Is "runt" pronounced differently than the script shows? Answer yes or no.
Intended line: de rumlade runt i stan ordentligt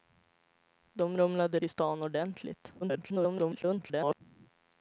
yes